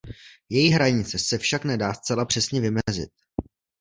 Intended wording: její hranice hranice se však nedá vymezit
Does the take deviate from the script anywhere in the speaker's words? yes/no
yes